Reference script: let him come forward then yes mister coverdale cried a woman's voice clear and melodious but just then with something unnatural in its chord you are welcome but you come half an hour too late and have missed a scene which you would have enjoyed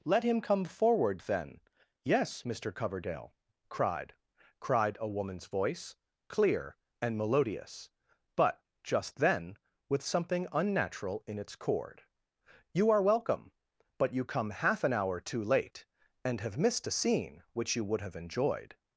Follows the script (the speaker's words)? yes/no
no